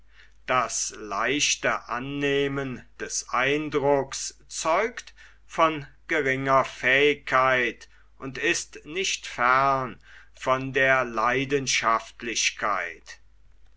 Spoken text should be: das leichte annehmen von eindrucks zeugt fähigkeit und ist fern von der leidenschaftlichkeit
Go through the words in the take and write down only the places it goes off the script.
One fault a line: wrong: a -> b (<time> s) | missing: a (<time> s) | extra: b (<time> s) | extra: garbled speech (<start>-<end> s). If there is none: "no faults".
wrong: von -> des (3.0 s)
extra: von geringer (5.5 s)
extra: nicht (8.8 s)